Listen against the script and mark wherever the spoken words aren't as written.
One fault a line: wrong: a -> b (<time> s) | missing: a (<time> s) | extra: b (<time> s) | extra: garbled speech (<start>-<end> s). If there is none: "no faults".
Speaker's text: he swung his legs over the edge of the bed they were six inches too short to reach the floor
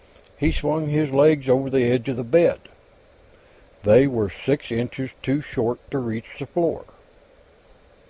no faults